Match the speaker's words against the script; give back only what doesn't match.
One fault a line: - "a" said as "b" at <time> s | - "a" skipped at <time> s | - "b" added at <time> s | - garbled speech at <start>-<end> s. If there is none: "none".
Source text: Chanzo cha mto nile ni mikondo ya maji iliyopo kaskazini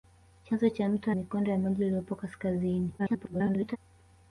- "nile ni" skipped at 1.1 s
- garbled speech at 3.0-3.8 s